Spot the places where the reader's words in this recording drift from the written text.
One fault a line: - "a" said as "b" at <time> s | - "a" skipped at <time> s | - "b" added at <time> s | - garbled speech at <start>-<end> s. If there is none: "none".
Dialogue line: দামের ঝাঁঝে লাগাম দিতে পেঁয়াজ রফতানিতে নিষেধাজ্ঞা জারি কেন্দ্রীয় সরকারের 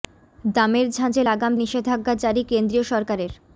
- "দিতে পেঁয়াজ রফতানিতে" skipped at 1.5 s